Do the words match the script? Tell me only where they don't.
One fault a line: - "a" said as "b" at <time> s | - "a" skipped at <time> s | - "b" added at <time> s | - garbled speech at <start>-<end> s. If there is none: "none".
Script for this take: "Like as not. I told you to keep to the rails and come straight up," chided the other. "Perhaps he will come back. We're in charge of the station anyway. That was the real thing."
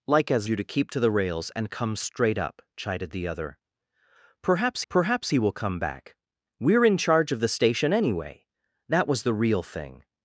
- "not I told" skipped at 0.5 s
- "perhaps" added at 4.9 s